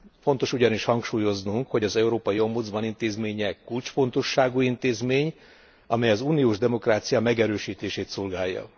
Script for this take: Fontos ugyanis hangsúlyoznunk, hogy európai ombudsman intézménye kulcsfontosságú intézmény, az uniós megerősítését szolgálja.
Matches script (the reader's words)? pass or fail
fail